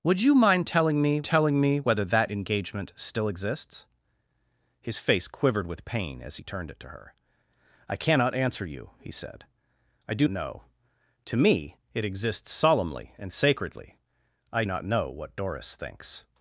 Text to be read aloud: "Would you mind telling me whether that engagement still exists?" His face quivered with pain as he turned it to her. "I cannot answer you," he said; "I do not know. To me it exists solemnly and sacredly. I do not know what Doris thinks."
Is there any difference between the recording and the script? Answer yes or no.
yes